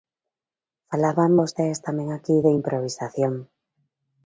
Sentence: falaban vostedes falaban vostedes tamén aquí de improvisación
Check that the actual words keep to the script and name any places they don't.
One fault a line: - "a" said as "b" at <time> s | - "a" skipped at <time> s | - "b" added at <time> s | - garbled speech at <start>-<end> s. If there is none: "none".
- "falaban vostedes" skipped at 1.8 s